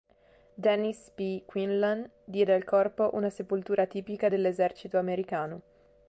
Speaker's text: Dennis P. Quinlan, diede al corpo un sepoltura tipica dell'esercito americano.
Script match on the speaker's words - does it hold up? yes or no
no